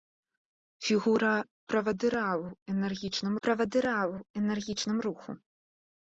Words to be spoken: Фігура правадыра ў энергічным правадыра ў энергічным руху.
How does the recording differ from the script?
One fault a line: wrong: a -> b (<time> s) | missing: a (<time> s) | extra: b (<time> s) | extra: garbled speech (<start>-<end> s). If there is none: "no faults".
no faults